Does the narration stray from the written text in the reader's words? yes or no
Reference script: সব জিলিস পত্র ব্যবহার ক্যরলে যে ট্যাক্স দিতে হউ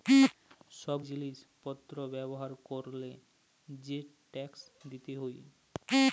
no